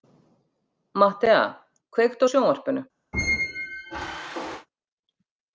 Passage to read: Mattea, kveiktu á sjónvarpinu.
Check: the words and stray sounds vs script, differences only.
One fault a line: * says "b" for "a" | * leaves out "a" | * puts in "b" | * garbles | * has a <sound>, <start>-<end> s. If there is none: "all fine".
* has a squeak, 3.1-4.7 s